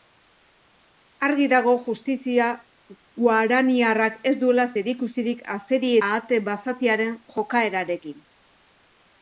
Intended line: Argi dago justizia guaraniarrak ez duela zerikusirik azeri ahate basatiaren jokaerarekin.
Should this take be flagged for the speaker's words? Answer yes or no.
no